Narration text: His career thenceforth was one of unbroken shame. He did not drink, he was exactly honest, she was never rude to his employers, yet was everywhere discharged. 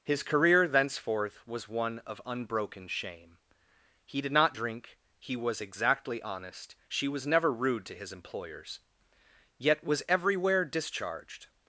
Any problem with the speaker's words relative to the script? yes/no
no